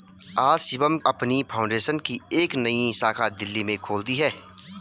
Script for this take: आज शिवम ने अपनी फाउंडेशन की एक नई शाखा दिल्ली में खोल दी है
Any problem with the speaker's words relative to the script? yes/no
yes